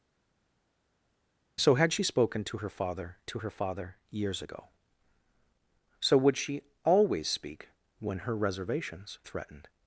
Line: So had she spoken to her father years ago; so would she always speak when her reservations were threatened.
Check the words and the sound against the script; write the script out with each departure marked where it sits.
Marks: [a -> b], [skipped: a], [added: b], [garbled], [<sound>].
So had she spoken to her father [added: to her father] years ago; so would she always speak when her reservations [skipped: were] threatened.